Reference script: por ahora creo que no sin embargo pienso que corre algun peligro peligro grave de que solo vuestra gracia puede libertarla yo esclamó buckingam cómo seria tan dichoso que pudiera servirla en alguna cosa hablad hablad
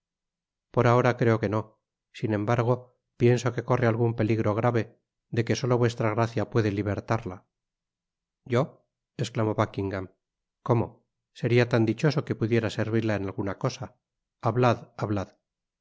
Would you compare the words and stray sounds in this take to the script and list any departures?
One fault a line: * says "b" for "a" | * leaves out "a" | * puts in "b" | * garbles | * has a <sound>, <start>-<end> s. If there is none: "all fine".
* leaves out "peligro"